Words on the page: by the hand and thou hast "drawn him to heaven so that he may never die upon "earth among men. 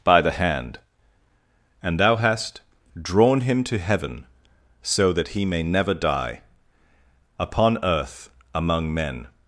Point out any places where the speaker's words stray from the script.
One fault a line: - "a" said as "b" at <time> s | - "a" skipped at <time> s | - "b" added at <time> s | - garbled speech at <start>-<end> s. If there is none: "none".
none